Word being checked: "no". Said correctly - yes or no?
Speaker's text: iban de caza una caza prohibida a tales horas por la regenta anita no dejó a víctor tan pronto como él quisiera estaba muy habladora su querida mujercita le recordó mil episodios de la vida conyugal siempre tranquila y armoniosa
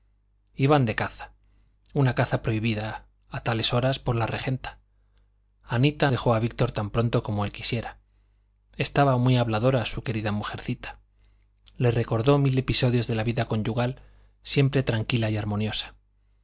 no